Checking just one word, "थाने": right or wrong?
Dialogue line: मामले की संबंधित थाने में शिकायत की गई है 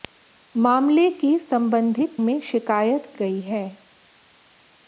wrong